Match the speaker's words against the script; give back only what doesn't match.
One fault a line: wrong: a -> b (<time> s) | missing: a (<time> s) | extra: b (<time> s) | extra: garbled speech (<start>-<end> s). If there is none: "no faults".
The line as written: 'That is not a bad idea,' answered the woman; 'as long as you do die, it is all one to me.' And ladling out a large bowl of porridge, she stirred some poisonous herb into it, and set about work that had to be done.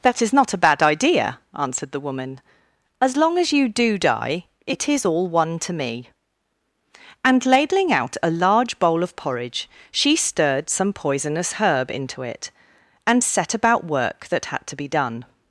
no faults